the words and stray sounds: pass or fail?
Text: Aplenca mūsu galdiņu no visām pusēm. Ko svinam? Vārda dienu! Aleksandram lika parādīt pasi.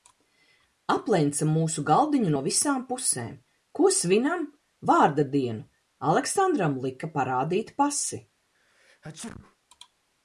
fail